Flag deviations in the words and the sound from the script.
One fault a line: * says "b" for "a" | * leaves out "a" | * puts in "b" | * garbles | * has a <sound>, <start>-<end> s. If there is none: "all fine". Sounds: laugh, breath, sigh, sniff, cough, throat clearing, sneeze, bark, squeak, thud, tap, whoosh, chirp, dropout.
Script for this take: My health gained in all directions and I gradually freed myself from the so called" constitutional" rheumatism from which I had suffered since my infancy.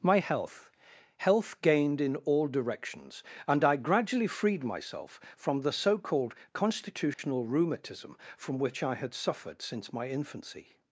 * puts in "health"
* has a dropout, 7.1-7.2 s